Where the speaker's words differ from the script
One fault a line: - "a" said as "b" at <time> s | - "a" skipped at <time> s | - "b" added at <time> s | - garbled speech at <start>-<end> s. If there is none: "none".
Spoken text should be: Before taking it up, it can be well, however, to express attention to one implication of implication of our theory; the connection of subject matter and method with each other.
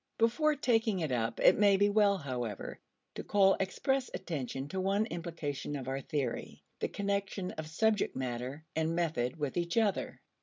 - "can" said as "may" at 1.6 s
- "call" added at 3.2 s
- "implication of" skipped at 5.9 s